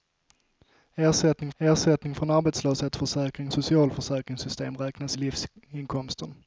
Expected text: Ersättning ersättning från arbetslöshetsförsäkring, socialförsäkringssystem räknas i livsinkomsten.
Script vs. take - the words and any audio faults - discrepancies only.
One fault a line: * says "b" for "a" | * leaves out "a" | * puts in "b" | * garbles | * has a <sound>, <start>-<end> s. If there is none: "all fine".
all fine